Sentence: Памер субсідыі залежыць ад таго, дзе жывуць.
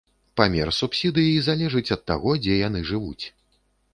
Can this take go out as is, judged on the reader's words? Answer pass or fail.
fail